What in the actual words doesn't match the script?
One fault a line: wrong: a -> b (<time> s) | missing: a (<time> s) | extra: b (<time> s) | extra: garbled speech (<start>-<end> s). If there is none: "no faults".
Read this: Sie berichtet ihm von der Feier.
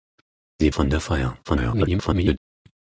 missing: berichtet ihm (0.7 s)
extra: garbled speech (1.4-2.4 s)